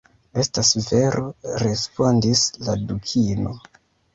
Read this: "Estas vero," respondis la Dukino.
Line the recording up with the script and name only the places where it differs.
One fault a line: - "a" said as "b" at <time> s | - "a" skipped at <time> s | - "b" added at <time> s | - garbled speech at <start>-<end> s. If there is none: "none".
none